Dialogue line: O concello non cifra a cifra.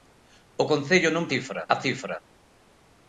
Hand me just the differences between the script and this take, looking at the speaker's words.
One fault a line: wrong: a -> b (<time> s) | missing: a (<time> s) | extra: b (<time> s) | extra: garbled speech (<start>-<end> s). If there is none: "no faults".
no faults